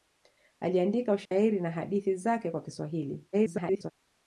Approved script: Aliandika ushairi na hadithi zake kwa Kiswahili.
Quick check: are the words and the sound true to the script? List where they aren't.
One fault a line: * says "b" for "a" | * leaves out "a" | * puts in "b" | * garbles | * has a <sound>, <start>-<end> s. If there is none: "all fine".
* has a dropout, 1.3-1.3 s
* garbles